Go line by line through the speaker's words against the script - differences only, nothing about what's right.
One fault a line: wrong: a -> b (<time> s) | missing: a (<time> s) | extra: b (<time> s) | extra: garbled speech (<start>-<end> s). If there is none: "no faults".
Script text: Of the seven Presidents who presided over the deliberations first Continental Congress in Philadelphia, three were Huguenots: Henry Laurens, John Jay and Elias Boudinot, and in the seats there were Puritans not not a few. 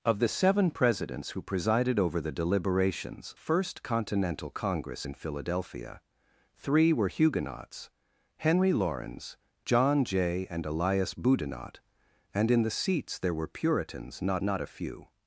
no faults